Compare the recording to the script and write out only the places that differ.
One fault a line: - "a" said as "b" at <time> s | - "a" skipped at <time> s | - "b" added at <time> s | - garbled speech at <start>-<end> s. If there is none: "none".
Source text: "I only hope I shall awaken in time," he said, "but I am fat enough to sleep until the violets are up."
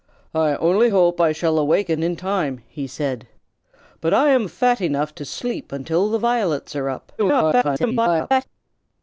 - garbled speech at 7.2-8.4 s